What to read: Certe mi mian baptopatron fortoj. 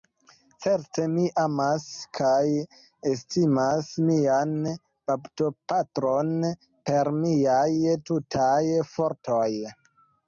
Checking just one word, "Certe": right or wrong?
right